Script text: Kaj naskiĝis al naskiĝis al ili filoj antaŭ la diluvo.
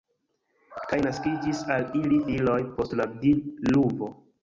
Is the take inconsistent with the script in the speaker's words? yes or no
yes